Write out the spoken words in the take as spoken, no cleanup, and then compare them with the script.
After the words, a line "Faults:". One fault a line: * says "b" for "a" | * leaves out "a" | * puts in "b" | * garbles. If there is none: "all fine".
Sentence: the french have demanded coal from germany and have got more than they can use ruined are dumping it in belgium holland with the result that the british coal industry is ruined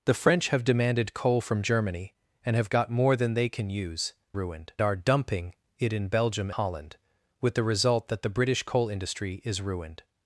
the french have demanded coal from germany and have got more than they can use ruined are dumping it in belgium holland with the result that the british coal industry is ruined
Faults:
all fine